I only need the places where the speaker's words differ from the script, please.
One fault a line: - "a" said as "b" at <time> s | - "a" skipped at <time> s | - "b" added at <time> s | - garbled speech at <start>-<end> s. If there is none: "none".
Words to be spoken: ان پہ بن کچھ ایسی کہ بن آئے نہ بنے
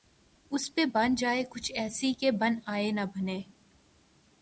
- "ان" said as "اس" at 0.5 s
- "جائے" added at 1.1 s